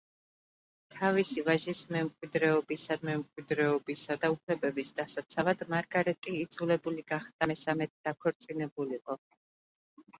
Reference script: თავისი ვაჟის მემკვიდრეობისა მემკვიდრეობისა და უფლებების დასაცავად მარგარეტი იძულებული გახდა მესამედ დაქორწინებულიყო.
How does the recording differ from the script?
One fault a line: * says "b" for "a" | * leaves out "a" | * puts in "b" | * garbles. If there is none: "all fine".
all fine